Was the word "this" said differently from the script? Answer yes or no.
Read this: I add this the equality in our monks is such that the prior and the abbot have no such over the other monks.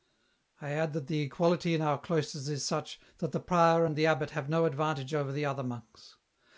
yes